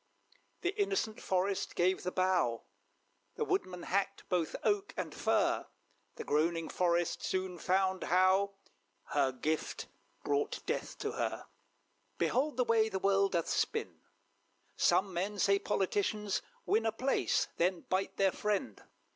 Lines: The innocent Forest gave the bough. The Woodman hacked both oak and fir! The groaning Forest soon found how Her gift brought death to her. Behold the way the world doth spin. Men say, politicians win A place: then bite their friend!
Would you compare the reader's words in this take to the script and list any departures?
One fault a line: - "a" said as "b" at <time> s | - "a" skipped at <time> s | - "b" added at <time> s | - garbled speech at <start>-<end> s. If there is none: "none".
- "Some" added at 14.7 s